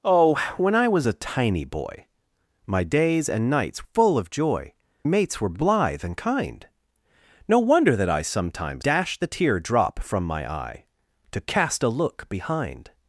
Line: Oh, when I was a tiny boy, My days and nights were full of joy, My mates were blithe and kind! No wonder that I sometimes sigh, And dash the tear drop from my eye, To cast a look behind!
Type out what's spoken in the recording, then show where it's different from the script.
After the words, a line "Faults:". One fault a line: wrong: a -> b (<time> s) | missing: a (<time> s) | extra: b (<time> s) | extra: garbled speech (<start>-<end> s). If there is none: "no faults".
Oh, when I was a tiny boy, My days and nights full of joy, Mates were blithe and kind! No wonder that I sometimes dash the tear drop from my eye, To cast a look behind!
Faults:
missing: were (3.8 s)
missing: My (4.7 s)
missing: sigh And (8.8 s)